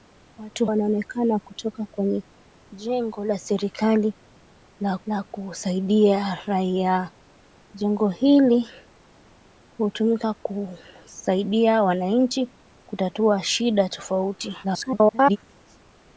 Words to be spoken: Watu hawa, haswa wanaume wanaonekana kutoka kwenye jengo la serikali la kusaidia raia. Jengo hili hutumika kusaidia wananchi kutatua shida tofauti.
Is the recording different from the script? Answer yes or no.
yes